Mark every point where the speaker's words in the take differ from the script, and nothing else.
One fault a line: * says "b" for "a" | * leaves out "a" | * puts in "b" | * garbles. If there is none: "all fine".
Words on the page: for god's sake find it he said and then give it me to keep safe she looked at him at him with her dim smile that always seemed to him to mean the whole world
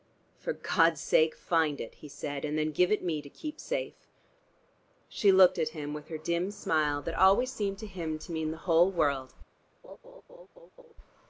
* leaves out "at him"